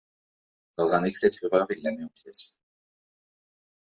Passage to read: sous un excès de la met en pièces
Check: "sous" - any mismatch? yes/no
yes